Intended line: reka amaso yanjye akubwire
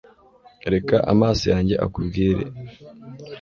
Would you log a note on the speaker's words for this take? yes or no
no